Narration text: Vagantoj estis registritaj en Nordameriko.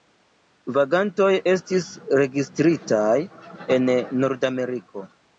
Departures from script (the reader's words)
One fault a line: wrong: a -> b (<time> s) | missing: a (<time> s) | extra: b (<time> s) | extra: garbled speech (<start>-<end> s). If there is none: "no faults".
no faults